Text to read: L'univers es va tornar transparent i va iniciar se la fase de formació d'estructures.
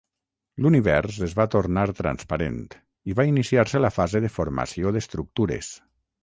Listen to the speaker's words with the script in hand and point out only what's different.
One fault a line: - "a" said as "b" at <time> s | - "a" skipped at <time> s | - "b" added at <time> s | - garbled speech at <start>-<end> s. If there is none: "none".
none